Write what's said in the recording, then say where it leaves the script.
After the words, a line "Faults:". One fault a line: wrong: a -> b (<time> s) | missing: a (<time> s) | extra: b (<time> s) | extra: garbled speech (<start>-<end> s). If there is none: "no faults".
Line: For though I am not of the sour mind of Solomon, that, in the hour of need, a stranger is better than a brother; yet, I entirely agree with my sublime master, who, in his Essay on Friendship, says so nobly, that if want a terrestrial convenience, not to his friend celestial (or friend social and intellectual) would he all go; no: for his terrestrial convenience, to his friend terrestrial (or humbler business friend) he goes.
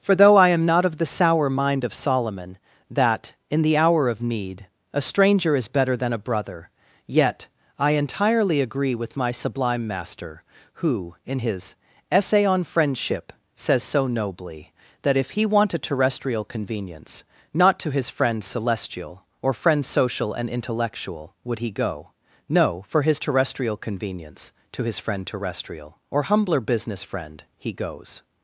For though I am not of the sour mind of Solomon, that, in the hour of need, a stranger is better than a brother; yet, I entirely agree with my sublime master, who, in his Essay on Friendship, says so nobly, that if he want a terrestrial convenience, not to his friend celestial (or friend social and intellectual) would he go; no: for his terrestrial convenience, to his friend terrestrial (or humbler business friend) he goes.
Faults:
extra: he (15.3 s)
missing: all (21.7 s)